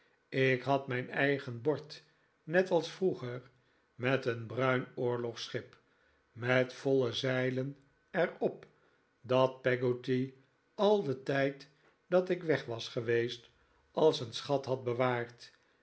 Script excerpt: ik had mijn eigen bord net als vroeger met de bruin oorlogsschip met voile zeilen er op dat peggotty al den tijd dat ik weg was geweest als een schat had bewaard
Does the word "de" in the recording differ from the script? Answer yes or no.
yes